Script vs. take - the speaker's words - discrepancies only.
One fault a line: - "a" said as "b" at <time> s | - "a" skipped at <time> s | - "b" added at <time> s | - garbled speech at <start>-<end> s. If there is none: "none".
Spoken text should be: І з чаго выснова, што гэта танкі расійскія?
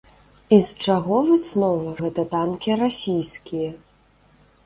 - "што" skipped at 1.9 s